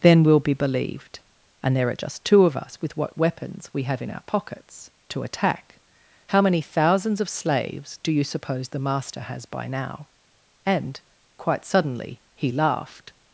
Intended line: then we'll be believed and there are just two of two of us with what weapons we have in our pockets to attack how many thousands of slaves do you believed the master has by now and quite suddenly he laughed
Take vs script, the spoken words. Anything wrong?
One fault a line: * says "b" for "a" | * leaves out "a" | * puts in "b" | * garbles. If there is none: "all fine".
* leaves out "two of"
* says "suppose" for "believed"